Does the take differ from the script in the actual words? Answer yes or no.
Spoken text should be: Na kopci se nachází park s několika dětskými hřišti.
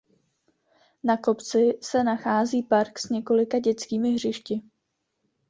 no